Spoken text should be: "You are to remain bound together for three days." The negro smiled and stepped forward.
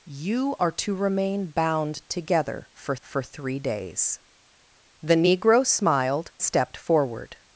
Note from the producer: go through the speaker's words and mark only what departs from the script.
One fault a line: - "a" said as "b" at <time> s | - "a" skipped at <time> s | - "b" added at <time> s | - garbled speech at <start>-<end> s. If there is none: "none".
- "for" added at 3.0 s
- "and" skipped at 6.3 s